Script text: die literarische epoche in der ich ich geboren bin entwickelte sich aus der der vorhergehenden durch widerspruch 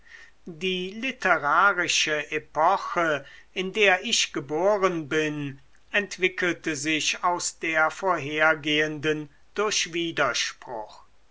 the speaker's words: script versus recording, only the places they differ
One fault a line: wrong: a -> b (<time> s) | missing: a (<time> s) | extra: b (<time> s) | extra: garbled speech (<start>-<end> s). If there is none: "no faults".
missing: ich (4.3 s)
missing: der (7.9 s)